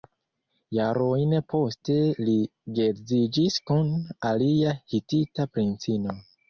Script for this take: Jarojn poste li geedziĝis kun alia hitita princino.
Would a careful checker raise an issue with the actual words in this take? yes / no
no